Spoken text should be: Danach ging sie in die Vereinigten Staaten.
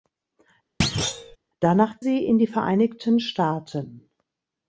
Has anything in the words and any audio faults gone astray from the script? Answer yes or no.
yes